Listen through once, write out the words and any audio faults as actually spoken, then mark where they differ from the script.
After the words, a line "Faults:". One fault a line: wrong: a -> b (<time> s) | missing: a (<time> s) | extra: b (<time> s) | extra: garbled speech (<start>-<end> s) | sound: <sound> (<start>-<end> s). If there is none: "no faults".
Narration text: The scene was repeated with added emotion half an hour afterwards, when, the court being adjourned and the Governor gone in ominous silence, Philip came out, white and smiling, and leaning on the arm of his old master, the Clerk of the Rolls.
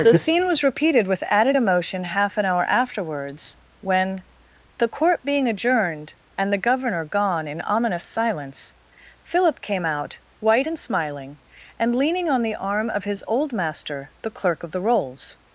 The scene was repeated with added emotion half an hour afterwards, when, the court being adjourned and the Governor gone in ominous silence, Philip came out, white and smiling, and leaning on the arm of his old master, the Clerk of the Rolls.
Faults:
no faults